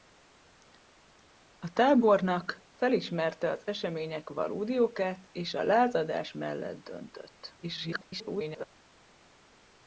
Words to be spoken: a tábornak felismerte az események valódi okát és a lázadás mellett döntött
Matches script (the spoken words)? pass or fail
fail